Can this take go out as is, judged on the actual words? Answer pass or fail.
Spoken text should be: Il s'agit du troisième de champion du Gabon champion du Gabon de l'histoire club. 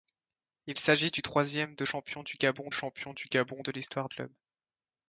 pass